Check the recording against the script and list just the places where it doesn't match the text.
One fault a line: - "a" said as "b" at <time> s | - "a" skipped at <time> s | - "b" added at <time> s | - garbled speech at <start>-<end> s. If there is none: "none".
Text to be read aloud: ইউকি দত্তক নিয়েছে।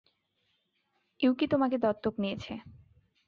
- "তোমাকে" added at 1.5 s